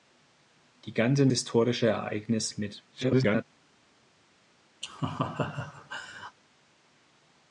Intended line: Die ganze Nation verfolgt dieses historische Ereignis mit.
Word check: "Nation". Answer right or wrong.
wrong